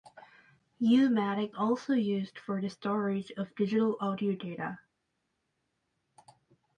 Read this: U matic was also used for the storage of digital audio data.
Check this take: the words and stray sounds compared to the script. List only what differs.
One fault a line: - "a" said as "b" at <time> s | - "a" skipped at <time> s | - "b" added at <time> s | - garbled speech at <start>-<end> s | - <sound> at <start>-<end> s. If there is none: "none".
- "was" skipped at 1.6 s